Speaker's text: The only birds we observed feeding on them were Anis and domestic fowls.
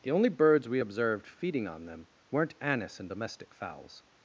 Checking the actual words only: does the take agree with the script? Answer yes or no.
no